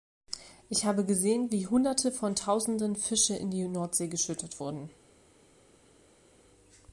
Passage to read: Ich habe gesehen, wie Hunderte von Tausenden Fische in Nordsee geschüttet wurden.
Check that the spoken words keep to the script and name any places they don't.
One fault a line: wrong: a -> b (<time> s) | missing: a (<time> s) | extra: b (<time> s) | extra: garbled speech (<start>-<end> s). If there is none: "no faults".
extra: die (3.5 s)